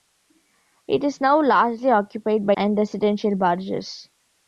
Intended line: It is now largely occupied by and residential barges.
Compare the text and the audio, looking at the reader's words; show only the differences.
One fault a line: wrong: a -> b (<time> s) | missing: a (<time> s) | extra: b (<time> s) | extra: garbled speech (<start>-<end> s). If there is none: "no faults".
no faults